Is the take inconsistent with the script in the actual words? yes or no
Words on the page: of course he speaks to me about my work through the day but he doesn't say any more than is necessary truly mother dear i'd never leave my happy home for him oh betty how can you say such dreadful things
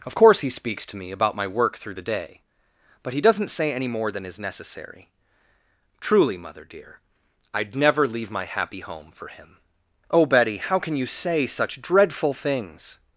no